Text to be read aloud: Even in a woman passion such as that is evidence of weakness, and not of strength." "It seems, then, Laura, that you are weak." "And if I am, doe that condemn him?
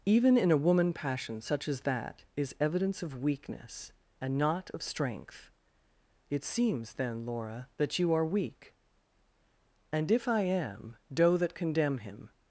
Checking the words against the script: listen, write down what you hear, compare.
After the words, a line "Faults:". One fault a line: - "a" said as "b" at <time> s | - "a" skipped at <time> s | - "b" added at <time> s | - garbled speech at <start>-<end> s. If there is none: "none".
Even in a woman passion such as that is evidence of weakness, and not of strength." "It seems, then, Laura, that you are weak." "And if I am, doe that condemn him?
Faults:
none